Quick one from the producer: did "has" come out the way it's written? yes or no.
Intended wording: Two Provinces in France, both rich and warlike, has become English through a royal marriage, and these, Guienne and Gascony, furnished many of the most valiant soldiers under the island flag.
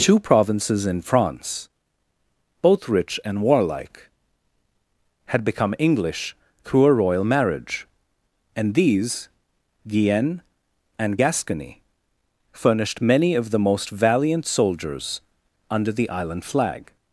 no